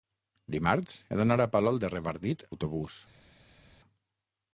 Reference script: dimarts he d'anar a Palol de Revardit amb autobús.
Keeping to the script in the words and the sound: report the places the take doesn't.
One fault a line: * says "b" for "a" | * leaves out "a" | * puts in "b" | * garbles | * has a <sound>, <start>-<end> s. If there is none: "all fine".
* leaves out "amb"